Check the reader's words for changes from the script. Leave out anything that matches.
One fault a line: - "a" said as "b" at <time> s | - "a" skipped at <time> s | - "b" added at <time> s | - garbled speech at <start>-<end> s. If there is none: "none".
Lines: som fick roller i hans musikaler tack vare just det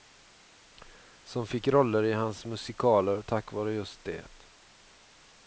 none